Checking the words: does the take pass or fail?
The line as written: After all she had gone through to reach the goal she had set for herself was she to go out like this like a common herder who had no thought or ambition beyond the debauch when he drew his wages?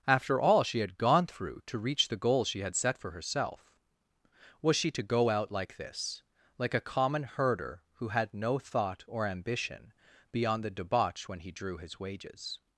pass